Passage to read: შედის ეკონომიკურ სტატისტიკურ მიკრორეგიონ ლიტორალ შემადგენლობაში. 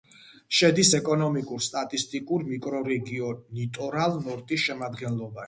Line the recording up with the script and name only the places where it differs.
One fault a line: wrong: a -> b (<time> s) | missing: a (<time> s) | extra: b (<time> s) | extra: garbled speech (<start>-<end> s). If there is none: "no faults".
extra: ნორტის (4.3 s)